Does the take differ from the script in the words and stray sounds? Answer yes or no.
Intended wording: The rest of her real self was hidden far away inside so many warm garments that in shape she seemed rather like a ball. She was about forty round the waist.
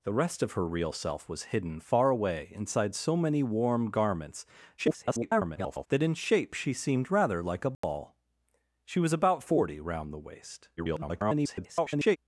yes